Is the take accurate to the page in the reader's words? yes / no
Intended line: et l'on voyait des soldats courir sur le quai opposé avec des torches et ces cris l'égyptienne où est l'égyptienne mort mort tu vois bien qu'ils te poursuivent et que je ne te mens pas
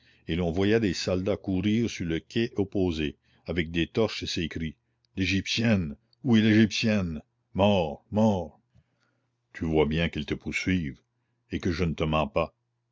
yes